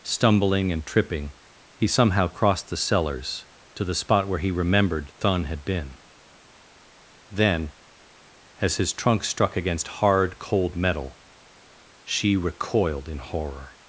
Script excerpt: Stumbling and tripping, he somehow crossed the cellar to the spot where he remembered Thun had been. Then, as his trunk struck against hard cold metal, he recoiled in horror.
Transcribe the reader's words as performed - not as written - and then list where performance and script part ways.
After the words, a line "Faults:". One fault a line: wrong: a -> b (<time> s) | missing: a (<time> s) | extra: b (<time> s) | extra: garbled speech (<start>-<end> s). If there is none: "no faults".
Stumbling and tripping, he somehow crossed the cellars to the spot where he remembered Thun had been. Then, as his trunk struck against hard cold metal, she recoiled in horror.
Faults:
wrong: cellar -> cellars (2.8 s)
wrong: he -> she (12.0 s)